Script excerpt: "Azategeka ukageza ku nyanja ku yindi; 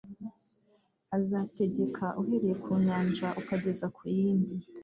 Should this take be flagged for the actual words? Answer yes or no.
yes